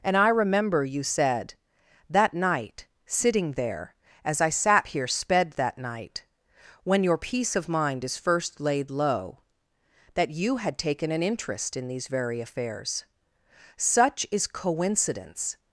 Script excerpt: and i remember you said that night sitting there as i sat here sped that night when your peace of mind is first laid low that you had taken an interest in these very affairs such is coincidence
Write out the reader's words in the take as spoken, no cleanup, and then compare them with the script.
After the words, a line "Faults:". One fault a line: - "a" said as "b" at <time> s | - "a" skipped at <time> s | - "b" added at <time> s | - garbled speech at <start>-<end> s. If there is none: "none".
and i remember you said that night sitting there as i sat here sped that night when your peace of mind is first laid low that you had taken an interest in these very affairs such is coincidence
Faults:
none